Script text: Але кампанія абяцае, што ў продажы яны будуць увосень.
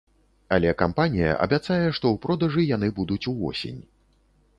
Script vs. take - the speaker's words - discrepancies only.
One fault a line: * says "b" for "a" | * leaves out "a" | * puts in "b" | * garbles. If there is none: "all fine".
all fine